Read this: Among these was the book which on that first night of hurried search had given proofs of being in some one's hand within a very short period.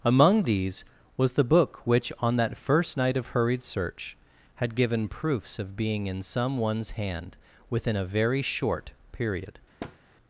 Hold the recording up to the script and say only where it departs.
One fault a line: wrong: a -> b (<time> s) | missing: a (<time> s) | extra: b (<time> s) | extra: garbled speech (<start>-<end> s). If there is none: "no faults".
no faults